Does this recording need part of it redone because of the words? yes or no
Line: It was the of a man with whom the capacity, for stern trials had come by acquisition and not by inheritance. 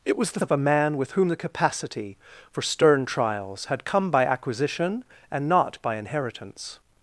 no